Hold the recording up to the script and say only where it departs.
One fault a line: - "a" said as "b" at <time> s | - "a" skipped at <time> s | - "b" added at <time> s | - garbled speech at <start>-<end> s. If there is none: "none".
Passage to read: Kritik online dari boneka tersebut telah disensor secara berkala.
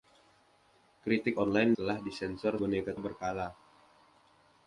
- "dari boneka tersebut" skipped at 1.8 s
- "secara" said as "boneka" at 2.6 s